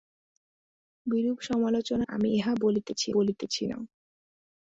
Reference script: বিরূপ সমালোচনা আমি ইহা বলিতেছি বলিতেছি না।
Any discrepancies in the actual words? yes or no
no